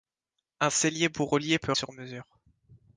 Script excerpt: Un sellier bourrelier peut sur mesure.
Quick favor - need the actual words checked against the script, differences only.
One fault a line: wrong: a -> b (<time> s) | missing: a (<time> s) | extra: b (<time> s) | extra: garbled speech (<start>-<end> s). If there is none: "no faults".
no faults